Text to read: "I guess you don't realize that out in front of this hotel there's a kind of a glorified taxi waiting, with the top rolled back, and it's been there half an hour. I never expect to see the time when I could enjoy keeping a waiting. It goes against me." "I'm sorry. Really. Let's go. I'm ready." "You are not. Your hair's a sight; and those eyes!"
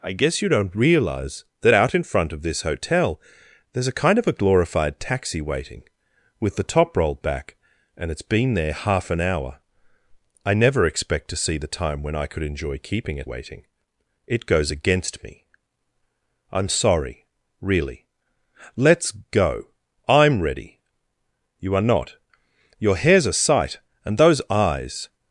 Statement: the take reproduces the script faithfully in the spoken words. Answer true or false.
true